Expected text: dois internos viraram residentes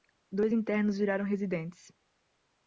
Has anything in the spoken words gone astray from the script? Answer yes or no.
no